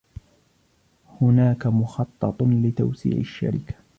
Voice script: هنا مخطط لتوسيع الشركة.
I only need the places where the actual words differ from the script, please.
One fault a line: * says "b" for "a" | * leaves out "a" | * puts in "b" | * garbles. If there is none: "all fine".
* says "هناك" for "هنا"